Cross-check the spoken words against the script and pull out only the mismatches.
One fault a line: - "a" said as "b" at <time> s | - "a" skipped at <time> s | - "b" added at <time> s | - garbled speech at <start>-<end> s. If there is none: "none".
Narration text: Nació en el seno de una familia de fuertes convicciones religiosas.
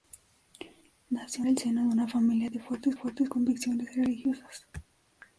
- "en" skipped at 1.4 s
- "fuertes" added at 2.9 s